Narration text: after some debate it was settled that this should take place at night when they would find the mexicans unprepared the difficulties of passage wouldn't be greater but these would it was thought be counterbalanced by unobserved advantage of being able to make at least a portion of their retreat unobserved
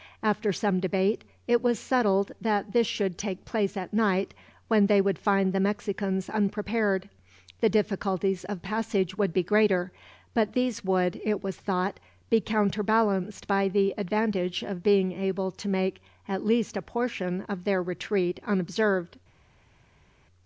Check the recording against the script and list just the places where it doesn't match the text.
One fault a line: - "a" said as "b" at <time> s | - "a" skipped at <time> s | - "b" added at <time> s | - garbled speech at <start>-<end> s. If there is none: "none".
- "wouldn't" said as "would" at 9.2 s
- "unobserved" said as "the" at 13.7 s